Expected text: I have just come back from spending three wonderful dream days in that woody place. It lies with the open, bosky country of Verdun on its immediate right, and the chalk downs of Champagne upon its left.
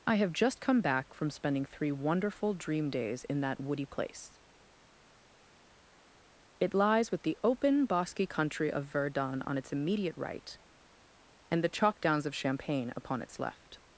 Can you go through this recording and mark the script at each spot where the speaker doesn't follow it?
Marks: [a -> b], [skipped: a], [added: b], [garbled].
I have just come back from spending three wonderful dream days in that woody place. It lies with the open, bosky country of Verdun on its immediate right, and the chalk downs of Champagne upon its left.